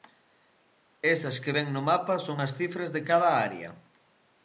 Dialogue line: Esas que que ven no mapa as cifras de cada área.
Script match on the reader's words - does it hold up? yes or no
no